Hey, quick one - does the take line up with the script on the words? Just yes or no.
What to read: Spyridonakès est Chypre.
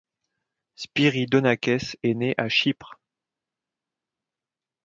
no